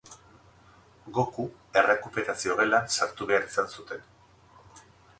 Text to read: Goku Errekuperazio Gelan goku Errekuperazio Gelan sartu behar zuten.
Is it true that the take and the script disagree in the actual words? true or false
true